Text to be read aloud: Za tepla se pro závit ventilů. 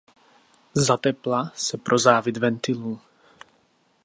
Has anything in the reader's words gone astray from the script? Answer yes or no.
no